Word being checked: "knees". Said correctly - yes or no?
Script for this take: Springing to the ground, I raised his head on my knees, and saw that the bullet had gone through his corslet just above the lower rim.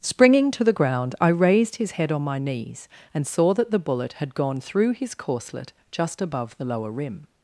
yes